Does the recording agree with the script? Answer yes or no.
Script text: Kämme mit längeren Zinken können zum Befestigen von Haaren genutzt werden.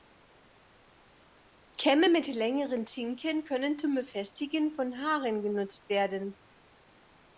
yes